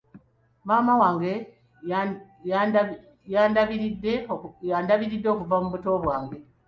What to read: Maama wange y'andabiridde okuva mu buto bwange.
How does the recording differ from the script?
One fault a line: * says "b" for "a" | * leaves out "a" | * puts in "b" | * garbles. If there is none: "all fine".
all fine